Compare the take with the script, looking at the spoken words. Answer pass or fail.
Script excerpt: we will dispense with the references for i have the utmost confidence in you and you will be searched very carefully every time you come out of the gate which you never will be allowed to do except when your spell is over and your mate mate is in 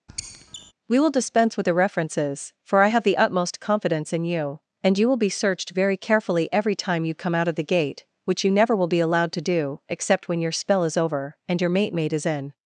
pass